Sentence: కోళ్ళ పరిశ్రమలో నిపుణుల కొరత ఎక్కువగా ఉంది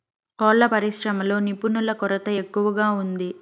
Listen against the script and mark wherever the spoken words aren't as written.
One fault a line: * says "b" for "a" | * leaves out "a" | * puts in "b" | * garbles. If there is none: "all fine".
all fine